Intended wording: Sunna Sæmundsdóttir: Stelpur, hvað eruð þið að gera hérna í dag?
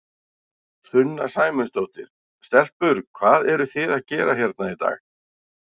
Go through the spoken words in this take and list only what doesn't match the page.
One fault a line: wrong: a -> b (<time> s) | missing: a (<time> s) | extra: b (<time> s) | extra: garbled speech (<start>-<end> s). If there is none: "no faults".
no faults